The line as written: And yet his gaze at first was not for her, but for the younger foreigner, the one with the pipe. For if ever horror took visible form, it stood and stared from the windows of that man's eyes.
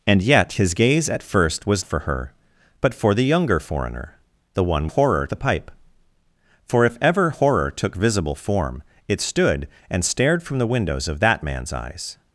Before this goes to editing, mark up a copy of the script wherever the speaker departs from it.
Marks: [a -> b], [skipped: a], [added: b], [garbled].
And yet his gaze at first was [skipped: not] for her, but for the younger foreigner, the one [with -> horror] the pipe. For if ever horror took visible form, it stood and stared from the windows of that man's eyes.